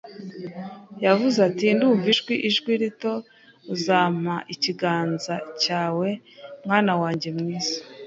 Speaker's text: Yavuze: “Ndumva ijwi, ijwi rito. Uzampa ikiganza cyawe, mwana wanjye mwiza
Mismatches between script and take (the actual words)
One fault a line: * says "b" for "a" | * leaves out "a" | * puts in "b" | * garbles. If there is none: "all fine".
* puts in "ati"